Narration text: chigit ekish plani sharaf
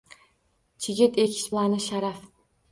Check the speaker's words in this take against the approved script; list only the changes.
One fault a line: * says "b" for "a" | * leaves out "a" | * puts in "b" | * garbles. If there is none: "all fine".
all fine